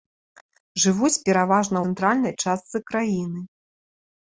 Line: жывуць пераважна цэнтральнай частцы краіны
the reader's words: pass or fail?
pass